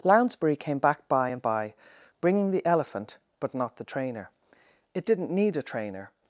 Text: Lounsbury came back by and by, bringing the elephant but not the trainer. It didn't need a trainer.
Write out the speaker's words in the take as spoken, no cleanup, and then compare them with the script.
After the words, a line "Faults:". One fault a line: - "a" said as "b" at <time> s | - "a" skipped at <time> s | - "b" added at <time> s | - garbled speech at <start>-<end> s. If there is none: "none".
Lounsbury came back by and by, bringing the elephant but not the trainer. It didn't need a trainer.
Faults:
none